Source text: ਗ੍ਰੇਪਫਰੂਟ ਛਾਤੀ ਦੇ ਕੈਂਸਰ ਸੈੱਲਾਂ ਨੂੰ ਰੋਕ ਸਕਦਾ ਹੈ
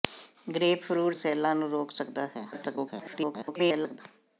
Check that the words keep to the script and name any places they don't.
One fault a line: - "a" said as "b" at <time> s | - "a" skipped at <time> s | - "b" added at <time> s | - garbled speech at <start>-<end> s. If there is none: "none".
- "ਛਾਤੀ ਦੇ ਕੈਂਸਰ" skipped at 1.2 s
- garbled speech at 2.5-4.0 s